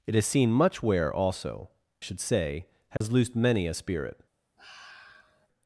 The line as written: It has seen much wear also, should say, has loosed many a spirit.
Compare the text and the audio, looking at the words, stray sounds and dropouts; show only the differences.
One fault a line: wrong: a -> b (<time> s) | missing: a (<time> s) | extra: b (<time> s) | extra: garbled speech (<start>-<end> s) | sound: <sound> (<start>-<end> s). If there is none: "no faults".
sound: dropout (3.0-3.0 s)
sound: sigh (4.6-5.5 s)